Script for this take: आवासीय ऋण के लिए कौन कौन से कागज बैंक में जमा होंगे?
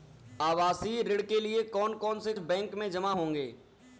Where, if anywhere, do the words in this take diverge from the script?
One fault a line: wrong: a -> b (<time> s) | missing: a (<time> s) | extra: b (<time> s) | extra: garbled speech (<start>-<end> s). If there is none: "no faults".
missing: कागज (2.3 s)